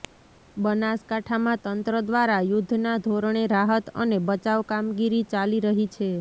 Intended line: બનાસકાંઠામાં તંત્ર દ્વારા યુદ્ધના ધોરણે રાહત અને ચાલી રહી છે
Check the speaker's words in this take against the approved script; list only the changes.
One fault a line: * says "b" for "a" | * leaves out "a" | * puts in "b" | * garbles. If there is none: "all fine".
* puts in "બચાવ કામગીરી"